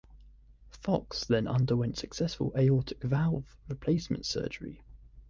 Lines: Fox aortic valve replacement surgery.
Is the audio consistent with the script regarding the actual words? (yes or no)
no